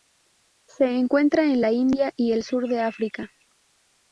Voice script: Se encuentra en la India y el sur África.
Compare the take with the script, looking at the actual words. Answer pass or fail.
fail